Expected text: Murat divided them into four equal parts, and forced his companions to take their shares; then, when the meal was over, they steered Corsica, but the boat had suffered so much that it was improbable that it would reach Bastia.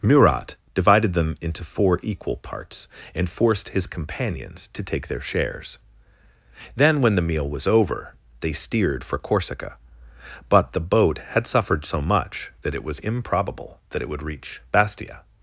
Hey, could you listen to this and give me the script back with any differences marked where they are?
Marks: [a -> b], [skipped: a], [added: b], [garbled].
Murat divided them into four equal parts, and forced his companions to take their shares; then, when the meal was over, they steered [added: for] Corsica, but the boat had suffered so much that it was improbable that it would reach Bastia.